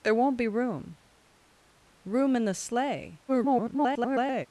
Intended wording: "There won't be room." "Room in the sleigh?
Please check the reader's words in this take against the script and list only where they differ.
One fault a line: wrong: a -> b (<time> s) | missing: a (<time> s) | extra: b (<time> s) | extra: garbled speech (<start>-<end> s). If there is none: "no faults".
extra: garbled speech (3.3-4.5 s)